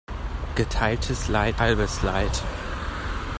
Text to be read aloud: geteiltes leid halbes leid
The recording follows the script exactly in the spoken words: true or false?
true